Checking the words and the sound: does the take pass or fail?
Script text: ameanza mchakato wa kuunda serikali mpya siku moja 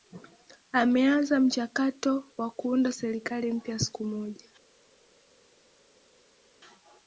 pass